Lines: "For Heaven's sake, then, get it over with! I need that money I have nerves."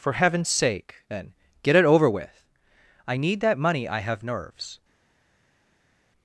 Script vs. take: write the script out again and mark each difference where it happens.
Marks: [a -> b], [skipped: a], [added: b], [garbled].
"For Heaven's sake, then, get it over with! I need that money I have nerves."